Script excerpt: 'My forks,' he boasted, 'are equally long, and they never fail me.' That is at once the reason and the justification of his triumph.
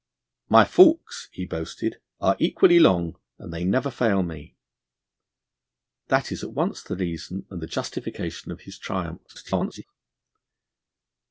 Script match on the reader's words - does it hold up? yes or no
no